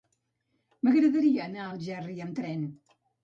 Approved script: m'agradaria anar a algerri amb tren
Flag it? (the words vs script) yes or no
no